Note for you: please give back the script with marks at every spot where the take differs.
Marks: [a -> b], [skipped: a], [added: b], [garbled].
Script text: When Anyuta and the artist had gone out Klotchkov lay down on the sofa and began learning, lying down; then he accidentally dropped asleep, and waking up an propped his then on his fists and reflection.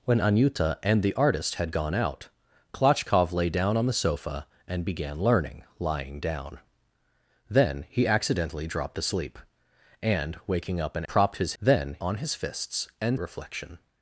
When Anyuta and the artist had gone out Klotchkov lay down on the sofa and began learning, lying down; then he accidentally dropped asleep, and waking up an propped his then on his fists and reflection.